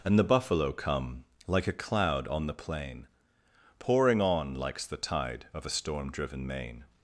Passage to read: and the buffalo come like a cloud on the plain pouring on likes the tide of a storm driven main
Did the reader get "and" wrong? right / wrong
right